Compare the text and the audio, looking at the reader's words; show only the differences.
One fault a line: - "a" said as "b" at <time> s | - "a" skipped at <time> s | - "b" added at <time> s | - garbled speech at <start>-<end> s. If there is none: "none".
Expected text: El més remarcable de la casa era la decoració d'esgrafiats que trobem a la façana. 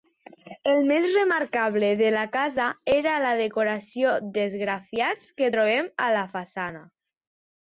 none